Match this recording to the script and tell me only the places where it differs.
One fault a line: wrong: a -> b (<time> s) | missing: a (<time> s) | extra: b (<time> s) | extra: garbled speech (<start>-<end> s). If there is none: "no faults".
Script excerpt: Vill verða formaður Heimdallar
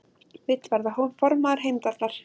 no faults